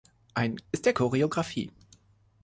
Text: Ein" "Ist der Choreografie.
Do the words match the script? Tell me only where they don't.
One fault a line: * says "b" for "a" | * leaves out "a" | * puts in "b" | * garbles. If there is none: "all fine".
all fine